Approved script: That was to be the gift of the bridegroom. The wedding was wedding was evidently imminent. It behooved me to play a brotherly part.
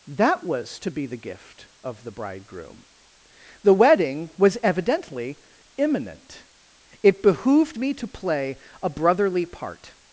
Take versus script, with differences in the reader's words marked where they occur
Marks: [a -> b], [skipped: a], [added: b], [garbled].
That was to be the gift of the bridegroom. The wedding was [skipped: wedding was] evidently imminent. It behooved me to play a brotherly part.